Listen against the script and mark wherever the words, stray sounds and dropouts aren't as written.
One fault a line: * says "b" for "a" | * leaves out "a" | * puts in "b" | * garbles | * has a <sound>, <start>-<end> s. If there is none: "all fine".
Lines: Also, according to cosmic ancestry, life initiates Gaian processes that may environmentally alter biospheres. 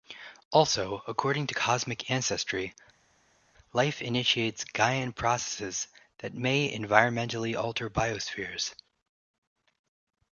all fine